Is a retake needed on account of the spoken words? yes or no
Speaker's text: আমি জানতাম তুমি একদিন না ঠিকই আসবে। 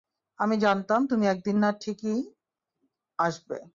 no